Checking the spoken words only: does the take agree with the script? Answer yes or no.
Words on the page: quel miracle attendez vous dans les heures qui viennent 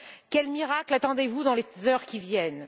yes